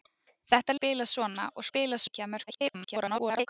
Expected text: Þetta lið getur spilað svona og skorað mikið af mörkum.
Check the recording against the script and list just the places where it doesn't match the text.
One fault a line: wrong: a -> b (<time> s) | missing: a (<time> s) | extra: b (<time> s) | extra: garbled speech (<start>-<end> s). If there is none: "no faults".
missing: lið getur (0.8 s)
wrong: skorað -> spilað (1.7 s)
extra: garbled speech (2.5-3.5 s)